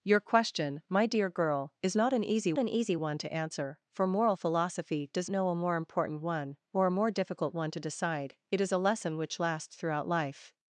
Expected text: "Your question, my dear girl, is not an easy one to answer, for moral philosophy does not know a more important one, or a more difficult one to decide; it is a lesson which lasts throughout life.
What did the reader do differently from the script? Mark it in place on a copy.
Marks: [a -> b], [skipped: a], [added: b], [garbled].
"Your question, my dear girl, is not an easy [added: an easy] one to answer, for moral philosophy does [skipped: not] know a more important one, or a more difficult one to decide; it is a lesson which lasts throughout life.